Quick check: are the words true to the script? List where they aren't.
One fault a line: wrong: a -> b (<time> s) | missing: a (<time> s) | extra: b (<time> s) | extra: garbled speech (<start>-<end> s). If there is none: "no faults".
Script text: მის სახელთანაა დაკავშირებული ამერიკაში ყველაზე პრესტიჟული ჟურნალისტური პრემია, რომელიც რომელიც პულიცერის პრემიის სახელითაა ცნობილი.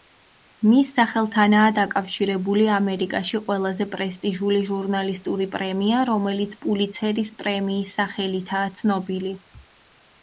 missing: რომელიც (6.6 s)